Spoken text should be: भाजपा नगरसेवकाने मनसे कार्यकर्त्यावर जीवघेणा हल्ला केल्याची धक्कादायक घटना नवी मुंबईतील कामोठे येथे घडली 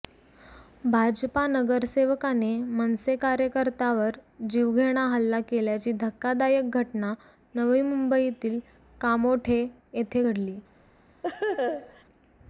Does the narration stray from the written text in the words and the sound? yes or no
yes